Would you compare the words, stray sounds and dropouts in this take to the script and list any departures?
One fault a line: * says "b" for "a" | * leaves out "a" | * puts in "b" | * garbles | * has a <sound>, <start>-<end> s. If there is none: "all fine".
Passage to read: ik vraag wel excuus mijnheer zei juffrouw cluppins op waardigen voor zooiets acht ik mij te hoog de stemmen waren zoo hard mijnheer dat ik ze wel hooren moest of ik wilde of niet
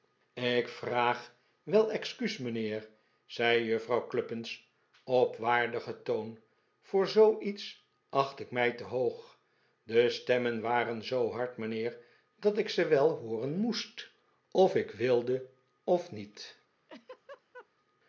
* puts in "toon"
* has a laugh, 16.9-17.7 s